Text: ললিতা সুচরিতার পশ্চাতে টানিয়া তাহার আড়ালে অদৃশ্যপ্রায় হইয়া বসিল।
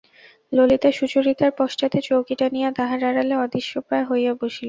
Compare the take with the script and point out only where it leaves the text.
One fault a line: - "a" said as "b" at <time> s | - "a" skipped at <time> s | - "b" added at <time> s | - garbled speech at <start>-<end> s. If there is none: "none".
- "চৌকি" added at 2.0 s